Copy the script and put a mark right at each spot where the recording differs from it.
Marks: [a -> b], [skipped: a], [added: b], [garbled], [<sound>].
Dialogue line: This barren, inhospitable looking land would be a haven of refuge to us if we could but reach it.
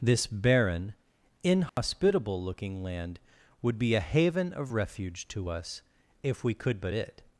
This barren, inhospitable [dropout] looking land would be a haven of refuge to us if we could but [skipped: reach] it.